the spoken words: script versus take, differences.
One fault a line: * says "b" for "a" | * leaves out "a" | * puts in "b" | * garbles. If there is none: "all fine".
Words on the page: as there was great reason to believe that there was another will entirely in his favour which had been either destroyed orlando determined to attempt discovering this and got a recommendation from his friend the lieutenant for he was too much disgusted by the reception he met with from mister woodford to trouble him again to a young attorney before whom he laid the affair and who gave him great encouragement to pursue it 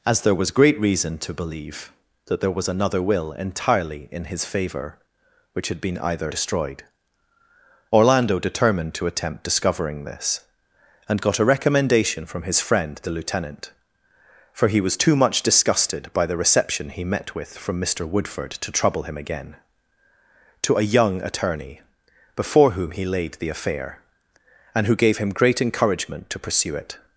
all fine